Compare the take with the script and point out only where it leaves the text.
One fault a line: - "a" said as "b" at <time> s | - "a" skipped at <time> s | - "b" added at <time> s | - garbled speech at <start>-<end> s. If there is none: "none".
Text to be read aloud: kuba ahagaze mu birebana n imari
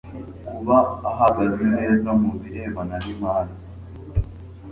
- "neza" added at 1.8 s